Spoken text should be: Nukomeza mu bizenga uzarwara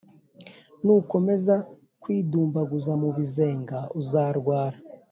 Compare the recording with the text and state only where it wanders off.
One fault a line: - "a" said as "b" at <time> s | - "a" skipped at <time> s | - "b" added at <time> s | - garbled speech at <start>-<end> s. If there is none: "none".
- "kwidumbaguza" added at 2.0 s